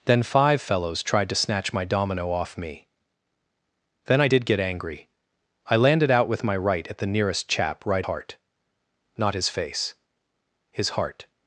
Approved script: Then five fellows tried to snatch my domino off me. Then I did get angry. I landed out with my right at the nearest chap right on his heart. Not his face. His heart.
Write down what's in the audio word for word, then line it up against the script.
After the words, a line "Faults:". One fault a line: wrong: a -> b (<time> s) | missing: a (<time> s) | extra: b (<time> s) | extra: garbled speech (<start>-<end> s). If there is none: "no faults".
Then five fellows tried to snatch my domino off me. Then I did get angry. I landed out with my right at the nearest chap right heart. Not his face. His heart.
Faults:
missing: on his (8.1 s)